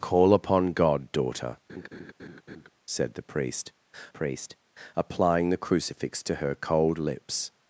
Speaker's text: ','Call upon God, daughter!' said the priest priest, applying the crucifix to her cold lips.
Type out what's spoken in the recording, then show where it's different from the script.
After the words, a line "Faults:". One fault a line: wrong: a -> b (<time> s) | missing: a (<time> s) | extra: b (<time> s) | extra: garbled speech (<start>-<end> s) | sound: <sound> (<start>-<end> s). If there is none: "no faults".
','Call upon God, daughter!' said the priest priest, applying the crucifix to her cold lips.
Faults:
sound: laugh (1.7-2.7 s)